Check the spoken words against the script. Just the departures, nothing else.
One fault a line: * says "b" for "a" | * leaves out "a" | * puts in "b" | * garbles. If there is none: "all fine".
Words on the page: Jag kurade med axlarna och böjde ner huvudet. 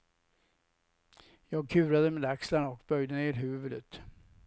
all fine